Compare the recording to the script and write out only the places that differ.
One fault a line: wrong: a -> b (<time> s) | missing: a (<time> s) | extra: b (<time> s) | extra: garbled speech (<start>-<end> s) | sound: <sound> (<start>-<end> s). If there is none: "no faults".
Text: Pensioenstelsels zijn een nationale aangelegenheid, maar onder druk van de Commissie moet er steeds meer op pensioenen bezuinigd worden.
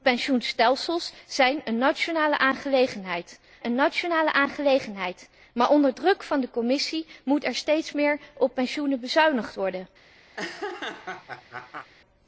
extra: een nationale aangelegenheid (3.6 s)
sound: laugh (10.3-11.9 s)